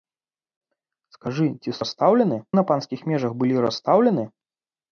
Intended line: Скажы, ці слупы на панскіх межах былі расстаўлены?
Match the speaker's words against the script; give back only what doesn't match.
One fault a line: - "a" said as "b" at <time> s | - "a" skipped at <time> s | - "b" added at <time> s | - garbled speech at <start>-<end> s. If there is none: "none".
- "слупы" said as "расстаўлены" at 1.8 s